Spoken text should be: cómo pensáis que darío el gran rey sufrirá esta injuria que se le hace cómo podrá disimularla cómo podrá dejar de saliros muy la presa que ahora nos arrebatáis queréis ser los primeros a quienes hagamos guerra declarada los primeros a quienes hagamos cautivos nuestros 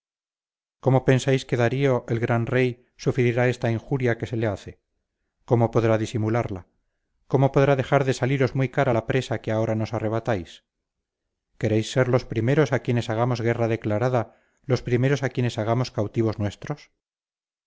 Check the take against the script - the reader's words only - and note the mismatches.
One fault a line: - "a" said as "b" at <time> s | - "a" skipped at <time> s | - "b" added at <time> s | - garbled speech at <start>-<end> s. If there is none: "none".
- "cara" added at 8.7 s